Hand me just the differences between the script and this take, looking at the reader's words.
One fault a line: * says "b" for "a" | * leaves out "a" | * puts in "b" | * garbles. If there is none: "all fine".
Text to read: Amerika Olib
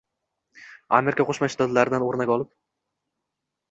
* puts in "Qo'shma Shtatlaridan o‘rnak"